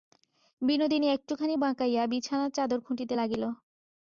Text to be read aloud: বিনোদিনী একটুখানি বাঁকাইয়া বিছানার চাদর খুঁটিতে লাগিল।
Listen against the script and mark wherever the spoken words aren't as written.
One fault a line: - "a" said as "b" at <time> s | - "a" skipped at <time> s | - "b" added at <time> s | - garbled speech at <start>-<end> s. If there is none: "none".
none